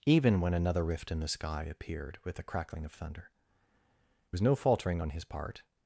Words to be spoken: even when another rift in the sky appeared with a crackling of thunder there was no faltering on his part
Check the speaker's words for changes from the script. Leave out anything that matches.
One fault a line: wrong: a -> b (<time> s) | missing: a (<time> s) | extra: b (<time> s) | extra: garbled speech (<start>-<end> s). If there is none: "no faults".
missing: there (3.3 s)